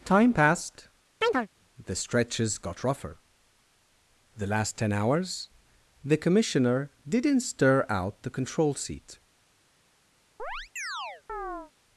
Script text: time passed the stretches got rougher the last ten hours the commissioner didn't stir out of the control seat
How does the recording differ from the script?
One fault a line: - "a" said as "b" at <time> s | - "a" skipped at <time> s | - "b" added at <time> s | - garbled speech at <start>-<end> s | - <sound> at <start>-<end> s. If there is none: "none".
- chirp at 1.2-1.5 s
- "of" skipped at 8.2 s
- chirp at 10.4-11.7 s